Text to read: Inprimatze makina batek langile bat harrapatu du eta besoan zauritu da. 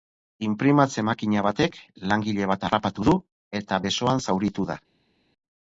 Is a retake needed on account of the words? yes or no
no